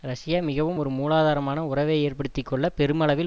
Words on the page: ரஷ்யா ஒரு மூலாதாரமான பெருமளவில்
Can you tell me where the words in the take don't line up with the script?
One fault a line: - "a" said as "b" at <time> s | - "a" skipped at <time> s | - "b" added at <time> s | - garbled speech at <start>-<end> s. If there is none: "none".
- "மிகவும்" added at 0.4 s
- "உறவை ஏற்படுத்தி கொள்ள" added at 1.7 s